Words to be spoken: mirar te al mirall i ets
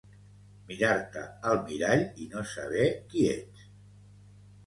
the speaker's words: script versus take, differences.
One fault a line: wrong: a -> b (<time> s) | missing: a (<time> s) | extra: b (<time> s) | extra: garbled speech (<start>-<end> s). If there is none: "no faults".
extra: no saber qui (2.3 s)